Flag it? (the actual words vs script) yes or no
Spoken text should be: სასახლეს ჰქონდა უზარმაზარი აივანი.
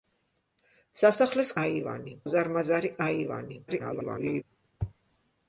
yes